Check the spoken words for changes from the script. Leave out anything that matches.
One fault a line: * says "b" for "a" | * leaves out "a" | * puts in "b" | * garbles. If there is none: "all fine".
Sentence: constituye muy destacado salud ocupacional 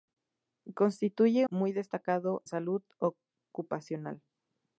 all fine